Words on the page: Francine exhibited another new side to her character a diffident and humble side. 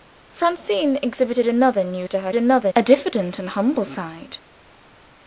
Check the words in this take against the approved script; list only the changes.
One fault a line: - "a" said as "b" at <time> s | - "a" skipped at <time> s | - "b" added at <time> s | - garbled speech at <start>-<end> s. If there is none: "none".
- "side" skipped at 2.1 s
- "character" said as "another" at 2.4 s